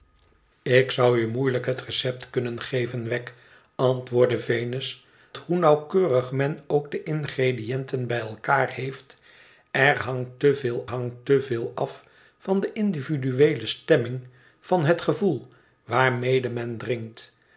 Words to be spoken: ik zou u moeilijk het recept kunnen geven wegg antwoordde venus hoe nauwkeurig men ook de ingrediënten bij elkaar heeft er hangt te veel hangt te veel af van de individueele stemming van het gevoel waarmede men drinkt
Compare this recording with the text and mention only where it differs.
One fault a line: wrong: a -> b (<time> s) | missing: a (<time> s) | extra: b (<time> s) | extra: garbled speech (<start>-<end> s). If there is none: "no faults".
no faults